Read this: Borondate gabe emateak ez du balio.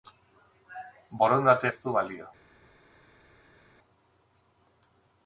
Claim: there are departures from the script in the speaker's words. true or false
true